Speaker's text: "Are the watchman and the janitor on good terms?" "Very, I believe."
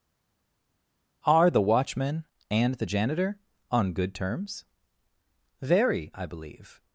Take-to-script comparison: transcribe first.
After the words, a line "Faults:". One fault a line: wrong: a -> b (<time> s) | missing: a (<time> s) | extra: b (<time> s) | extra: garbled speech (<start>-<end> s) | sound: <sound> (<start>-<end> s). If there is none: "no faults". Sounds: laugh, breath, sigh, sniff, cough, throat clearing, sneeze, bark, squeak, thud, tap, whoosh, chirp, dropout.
"Are the watchman and the janitor on good terms?" "Very, I believe."
Faults:
no faults